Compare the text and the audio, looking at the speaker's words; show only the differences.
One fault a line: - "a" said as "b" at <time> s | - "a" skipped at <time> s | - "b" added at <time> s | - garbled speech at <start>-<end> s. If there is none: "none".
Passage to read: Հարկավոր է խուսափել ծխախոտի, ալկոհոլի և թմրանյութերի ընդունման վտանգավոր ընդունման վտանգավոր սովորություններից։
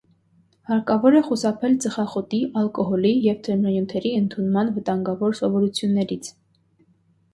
- "ընդունման վտանգավոր" skipped at 5.4 s